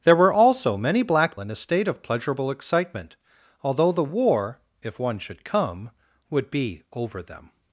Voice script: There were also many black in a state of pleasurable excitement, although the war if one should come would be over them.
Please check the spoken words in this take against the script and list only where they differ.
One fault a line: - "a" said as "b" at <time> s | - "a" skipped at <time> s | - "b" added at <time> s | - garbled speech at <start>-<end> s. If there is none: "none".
none